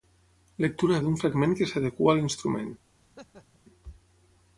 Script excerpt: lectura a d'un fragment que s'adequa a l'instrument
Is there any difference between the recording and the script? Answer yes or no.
no